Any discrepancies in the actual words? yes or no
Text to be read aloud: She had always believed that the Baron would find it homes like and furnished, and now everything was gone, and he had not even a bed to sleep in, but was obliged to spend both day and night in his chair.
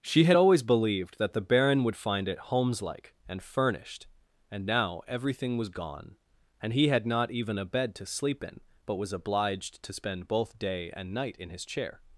no